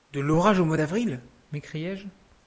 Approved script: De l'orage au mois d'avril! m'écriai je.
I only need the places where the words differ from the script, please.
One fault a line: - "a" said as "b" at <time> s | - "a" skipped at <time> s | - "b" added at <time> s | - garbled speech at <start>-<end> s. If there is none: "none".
none